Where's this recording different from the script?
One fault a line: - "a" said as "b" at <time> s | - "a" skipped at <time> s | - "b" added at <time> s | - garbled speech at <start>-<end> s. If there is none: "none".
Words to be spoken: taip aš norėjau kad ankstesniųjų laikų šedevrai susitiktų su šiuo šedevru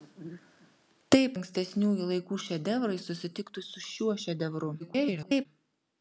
- "aš norėjau kad" skipped at 1.4 s
- garbled speech at 4.8-5.5 s